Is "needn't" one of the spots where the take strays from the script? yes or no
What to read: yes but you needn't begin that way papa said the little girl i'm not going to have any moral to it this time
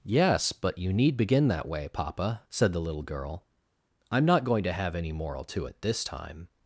yes